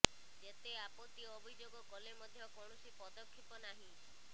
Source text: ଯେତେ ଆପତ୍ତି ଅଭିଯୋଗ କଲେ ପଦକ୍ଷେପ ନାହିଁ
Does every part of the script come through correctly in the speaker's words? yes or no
no